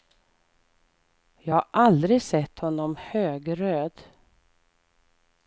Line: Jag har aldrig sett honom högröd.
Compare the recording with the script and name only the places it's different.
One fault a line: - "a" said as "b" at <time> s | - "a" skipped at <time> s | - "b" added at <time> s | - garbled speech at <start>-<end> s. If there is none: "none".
none